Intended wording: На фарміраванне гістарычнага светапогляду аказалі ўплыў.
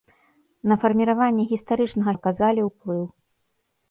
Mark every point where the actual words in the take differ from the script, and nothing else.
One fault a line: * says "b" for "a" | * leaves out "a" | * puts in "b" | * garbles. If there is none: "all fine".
* leaves out "светапогляду"